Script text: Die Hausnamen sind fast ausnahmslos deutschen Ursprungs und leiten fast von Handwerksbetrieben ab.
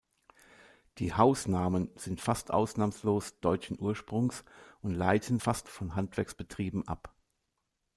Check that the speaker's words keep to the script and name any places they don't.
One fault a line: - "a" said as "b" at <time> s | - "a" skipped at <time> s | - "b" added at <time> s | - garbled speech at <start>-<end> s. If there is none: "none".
none